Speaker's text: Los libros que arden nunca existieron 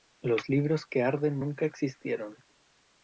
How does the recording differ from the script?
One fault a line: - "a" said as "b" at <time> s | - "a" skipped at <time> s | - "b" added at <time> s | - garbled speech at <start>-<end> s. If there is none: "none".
none